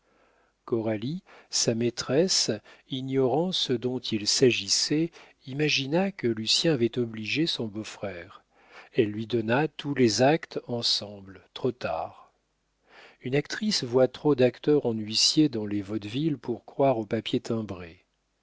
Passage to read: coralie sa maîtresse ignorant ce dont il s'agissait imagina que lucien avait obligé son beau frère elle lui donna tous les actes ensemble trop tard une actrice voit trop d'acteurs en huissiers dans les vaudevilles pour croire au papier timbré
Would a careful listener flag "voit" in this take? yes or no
no